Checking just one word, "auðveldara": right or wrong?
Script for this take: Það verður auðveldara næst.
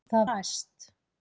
wrong